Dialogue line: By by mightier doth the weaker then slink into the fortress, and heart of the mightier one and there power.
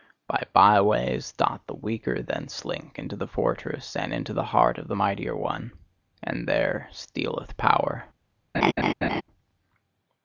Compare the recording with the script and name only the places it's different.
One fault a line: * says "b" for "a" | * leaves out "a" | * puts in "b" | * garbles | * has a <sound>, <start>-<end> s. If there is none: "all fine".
* says "ways" for "mightier"
* puts in "into the"
* puts in "stealeth"
* has a laugh, 8.5-9.2 s